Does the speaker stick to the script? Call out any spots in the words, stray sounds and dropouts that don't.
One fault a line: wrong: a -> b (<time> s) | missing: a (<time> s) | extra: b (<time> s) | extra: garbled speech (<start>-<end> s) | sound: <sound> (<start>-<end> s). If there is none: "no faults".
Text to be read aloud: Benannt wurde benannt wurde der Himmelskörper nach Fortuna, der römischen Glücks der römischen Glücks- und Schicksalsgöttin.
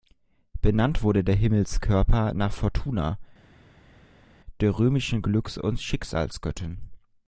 missing: benannt wurde (1.2 s)
missing: der römischen Glücks (5.6 s)